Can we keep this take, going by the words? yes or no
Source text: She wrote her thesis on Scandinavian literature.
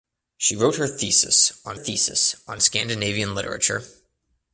no